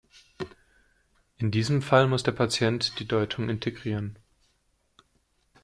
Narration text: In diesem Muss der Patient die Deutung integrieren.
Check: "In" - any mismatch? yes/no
no